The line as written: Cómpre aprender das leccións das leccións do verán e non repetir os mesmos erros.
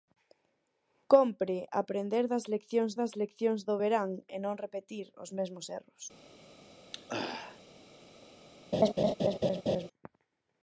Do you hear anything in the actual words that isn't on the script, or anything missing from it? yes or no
no